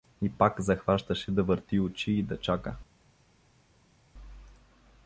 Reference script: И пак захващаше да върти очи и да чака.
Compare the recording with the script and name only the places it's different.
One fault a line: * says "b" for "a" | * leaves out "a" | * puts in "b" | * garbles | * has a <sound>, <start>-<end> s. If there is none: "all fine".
all fine